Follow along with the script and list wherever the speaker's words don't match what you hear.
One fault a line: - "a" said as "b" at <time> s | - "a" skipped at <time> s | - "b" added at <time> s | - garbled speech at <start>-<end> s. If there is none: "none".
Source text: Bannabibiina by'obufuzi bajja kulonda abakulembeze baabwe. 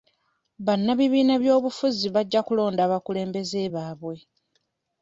none